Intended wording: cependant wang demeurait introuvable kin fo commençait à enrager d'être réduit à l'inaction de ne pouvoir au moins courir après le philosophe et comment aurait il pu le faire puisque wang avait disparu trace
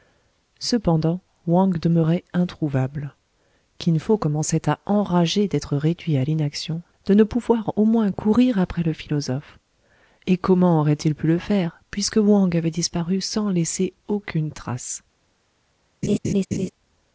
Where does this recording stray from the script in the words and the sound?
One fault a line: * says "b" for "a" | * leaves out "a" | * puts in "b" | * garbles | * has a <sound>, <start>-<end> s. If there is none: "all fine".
* puts in "sans laisser aucune"
* has a laugh, 16.0-16.7 s